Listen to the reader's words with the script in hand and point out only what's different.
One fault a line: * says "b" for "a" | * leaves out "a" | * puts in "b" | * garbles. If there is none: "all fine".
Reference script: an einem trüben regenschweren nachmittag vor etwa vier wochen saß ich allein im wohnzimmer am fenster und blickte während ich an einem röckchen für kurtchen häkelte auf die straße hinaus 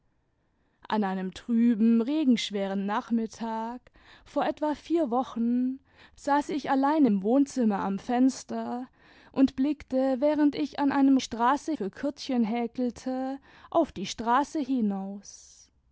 * says "straße" for "röckchen"